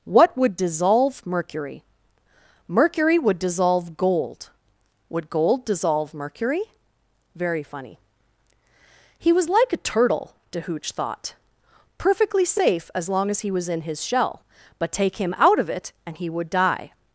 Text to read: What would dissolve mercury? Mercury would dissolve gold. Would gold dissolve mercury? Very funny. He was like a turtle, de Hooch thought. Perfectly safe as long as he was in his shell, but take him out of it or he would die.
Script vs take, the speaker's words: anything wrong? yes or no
yes